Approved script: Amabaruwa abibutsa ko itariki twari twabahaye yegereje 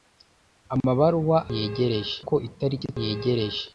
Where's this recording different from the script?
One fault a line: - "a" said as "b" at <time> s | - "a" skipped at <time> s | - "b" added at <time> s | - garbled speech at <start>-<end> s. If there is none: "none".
- "abibutsa" said as "yegereje" at 1.6 s
- "twari twabahaye" skipped at 2.9 s